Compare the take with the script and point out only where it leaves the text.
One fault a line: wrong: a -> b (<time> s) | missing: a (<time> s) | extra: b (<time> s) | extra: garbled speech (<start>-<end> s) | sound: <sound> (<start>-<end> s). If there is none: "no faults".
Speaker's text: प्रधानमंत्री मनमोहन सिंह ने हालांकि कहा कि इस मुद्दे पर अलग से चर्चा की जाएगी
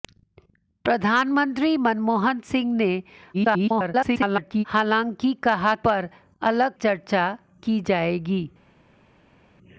extra: garbled speech (3.3-4.6 s)
missing: कि इस मुद्दे (5.7 s)
missing: से (6.8 s)